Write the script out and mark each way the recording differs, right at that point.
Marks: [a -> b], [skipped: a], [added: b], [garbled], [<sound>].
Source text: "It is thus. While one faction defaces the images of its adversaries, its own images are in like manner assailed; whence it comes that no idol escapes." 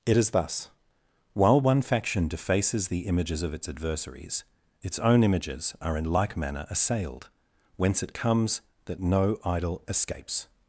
"It is thus. While one faction defaces the images of its adversaries, its own images are in like manner assailed; whence it comes that no idol escapes."